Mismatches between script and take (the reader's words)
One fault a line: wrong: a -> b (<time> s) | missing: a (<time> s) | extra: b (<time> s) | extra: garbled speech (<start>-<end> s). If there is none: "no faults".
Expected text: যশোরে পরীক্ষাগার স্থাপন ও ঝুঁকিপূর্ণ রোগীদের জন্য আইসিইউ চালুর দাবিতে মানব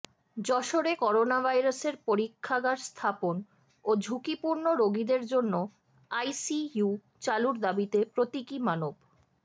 extra: করোনাভাইরাসের (1.0 s)
extra: প্রতীকী (8.1 s)